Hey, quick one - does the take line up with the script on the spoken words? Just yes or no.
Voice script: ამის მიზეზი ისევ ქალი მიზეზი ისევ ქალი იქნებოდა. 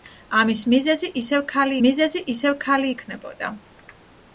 yes